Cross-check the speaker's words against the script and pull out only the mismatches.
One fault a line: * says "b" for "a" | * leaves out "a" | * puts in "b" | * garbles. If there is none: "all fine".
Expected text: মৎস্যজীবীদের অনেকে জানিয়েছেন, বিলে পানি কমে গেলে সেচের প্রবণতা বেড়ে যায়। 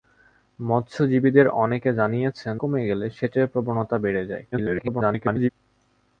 * leaves out "বিলে পানি"
* garbles